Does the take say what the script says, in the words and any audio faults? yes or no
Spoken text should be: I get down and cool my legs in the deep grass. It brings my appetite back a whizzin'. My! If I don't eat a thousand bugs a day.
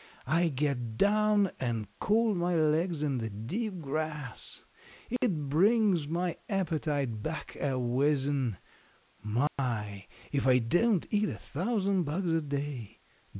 no